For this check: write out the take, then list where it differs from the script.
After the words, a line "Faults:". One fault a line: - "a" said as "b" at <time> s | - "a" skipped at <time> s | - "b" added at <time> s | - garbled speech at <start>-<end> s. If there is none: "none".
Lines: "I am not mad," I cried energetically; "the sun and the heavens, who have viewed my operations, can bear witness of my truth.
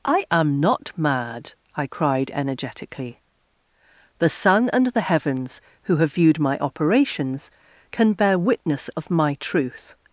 "I am not mad," I cried energetically; "the sun and the heavens, who have viewed my operations, can bear witness of my truth.
Faults:
none